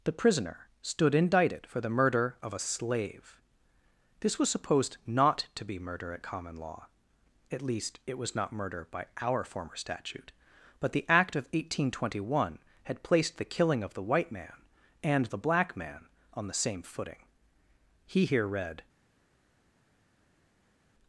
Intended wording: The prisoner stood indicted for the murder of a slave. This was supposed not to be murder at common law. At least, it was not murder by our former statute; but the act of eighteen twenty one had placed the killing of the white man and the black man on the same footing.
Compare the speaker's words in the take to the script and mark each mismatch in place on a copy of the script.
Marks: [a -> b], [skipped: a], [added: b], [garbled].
The prisoner stood indicted for the murder of a slave. This was supposed not to be murder at common law. At least, it was not murder by our former statute; but the act of eighteen twenty one had placed the killing of the white man and the black man on the same footing. [added: He here read]